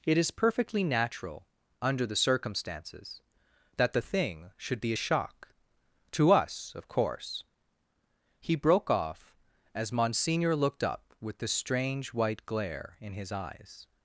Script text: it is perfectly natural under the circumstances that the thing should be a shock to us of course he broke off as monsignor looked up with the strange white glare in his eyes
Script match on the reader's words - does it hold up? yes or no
yes